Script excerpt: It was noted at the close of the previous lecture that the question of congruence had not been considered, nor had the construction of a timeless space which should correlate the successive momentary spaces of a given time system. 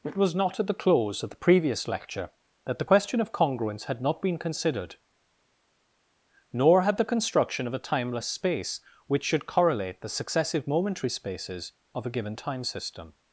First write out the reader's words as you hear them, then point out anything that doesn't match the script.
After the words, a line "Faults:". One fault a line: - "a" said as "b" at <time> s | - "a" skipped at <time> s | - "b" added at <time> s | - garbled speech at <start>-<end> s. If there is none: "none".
It was not at the close of the previous lecture that the question of congruence had not been considered, nor had the construction of a timeless space which should correlate the successive momentary spaces of a given time system.
Faults:
- "noted" said as "not" at 0.3 s